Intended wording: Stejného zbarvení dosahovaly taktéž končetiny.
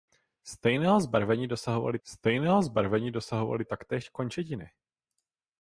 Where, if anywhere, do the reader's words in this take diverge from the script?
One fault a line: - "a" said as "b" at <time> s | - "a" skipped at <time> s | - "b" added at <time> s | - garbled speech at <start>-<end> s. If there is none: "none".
- "stejného zbarvení dosahovaly" added at 2.0 s